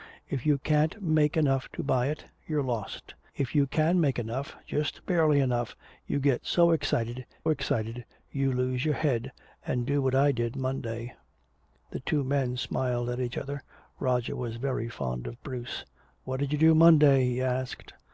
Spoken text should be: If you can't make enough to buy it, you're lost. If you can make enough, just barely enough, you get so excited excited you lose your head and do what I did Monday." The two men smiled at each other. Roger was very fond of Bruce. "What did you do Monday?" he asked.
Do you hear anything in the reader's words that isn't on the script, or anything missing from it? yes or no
no